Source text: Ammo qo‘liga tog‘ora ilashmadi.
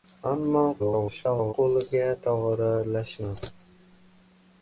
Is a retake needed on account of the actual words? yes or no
yes